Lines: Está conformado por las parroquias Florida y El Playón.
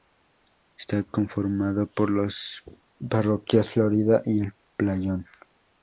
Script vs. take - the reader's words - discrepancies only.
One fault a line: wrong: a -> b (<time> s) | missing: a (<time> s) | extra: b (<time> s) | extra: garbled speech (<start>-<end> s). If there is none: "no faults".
no faults